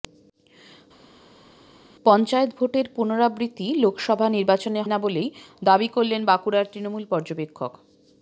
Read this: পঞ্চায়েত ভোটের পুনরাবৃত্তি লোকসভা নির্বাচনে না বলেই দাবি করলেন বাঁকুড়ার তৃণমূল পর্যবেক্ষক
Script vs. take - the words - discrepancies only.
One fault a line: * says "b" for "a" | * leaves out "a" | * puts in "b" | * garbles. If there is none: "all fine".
all fine